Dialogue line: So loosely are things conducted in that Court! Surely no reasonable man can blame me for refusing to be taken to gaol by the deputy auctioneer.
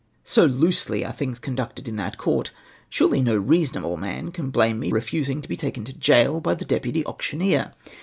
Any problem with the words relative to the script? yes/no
yes